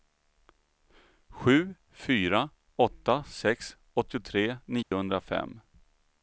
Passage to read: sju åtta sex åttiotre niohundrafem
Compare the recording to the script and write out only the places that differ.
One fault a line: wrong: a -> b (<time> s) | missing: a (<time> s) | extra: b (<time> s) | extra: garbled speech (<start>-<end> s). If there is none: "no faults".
extra: fyra (1.9 s)